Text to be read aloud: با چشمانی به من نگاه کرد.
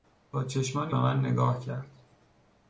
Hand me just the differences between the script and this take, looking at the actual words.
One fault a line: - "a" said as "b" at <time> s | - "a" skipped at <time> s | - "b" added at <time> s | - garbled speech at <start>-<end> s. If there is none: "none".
none